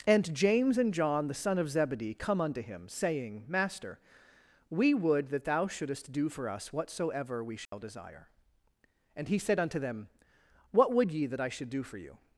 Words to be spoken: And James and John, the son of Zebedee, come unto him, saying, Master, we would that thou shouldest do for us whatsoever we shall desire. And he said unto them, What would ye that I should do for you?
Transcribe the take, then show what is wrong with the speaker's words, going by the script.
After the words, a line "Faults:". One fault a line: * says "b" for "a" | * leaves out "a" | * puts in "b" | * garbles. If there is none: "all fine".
And James and John, the son of Zebedee, come unto him, saying, Master, we would that thou shouldest do for us whatsoever we shall desire. And he said unto them, What would ye that I should do for you?
Faults:
all fine